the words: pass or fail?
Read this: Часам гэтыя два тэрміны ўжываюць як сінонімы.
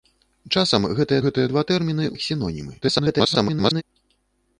fail